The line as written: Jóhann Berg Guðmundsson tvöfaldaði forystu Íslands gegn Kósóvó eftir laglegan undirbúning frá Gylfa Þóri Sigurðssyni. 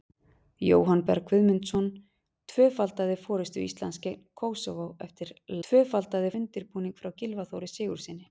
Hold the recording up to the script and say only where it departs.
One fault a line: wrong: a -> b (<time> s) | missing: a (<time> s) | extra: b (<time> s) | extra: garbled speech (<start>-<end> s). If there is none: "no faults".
wrong: laglegan -> tvöfaldaði (5.7 s)